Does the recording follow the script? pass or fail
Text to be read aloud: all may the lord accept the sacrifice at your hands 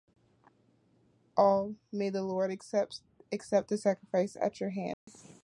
pass